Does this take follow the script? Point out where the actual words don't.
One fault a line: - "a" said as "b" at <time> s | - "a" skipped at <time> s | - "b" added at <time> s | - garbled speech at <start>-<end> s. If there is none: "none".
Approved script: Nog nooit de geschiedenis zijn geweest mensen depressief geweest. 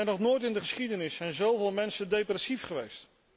- "in" added at 0.4 s
- "geweest" said as "zoveel" at 1.3 s